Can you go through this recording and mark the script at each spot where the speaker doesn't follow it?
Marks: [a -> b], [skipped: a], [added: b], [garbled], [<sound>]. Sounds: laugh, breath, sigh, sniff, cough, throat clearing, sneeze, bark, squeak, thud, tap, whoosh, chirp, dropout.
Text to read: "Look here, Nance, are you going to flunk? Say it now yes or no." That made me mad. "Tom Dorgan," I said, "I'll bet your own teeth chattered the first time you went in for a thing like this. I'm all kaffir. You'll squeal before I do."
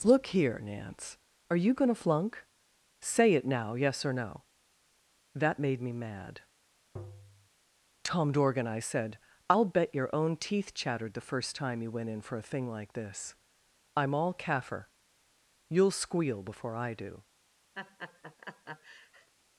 "Look here, Nance, are you going to flunk? Say it now yes or no." That made me mad. [tap] "Tom Dorgan," I said, "I'll bet your own teeth chattered the first time you went in for a thing like this. I'm all kaffir. You'll squeal before I do." [laugh]